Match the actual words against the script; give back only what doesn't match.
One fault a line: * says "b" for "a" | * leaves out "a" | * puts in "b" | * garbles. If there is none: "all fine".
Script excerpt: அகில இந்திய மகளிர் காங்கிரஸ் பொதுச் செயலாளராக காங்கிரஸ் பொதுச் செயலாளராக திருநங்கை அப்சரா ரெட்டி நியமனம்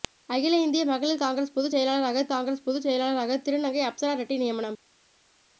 all fine